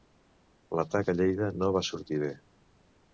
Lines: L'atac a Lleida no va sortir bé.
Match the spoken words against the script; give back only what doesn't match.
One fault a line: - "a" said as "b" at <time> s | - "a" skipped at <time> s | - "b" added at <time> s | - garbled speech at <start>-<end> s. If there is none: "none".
none